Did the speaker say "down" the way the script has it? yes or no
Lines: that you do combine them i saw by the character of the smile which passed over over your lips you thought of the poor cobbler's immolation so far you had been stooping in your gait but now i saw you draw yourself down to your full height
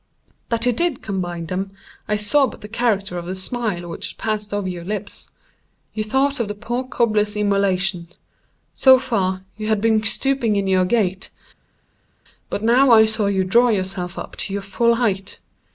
no